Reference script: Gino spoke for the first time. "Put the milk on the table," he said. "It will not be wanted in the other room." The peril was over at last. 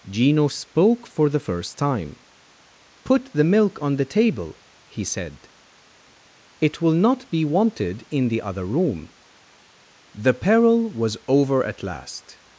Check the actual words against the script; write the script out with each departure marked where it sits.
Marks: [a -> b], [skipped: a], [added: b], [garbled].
Gino spoke for the first time. "Put the milk on the table," he said. "It will not be wanted in the other room." The peril was over at last.